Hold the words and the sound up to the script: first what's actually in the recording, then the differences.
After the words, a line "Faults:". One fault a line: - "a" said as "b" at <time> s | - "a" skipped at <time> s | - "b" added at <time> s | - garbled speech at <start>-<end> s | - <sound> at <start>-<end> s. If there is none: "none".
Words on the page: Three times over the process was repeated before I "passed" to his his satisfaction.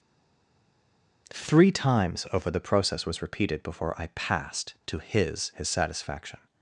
Three times over the process was repeated before I "passed" to his his satisfaction.
Faults:
none